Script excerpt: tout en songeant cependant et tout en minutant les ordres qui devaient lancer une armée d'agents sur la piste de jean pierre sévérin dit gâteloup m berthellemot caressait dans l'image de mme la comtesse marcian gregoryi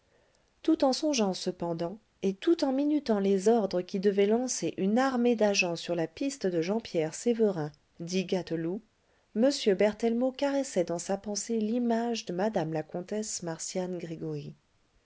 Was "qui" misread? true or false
false